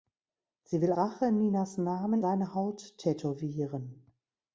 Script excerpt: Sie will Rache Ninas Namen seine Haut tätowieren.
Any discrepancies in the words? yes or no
no